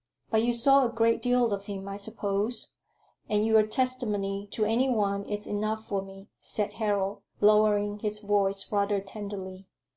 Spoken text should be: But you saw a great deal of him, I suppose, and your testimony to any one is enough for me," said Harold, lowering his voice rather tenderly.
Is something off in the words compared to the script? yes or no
no